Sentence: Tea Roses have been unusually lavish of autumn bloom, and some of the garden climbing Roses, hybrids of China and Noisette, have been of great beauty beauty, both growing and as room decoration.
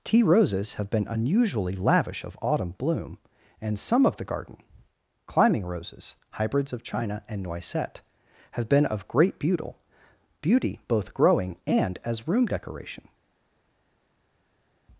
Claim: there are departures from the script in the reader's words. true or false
false